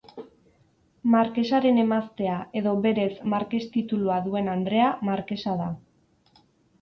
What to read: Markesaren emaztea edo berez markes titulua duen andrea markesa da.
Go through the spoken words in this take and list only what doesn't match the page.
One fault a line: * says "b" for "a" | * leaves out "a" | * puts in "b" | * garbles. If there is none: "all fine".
all fine